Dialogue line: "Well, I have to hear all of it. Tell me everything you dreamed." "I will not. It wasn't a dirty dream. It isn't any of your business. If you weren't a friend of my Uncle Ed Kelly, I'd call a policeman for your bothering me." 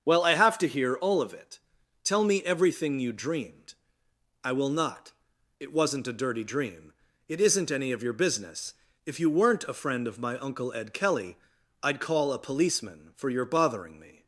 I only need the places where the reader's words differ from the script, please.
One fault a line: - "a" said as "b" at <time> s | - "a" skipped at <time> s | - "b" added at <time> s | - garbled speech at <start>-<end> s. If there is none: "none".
none